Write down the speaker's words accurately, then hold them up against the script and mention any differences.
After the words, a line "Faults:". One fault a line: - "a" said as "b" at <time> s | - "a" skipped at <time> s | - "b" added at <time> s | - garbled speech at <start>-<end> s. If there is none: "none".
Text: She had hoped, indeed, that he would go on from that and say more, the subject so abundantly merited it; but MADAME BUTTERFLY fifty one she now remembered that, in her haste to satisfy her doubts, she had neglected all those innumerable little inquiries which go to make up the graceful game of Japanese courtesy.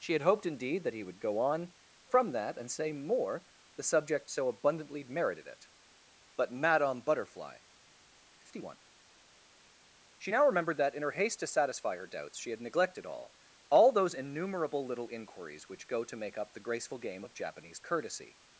She had hoped, indeed, that he would go on from that and say more, the subject so abundantly merited it; but MADAME BUTTERFLY fifty one she now remembered that, in her haste to satisfy her doubts, she had neglected all all those innumerable little inquiries which go to make up the graceful game of Japanese courtesy.
Faults:
- "all" added at 13.7 s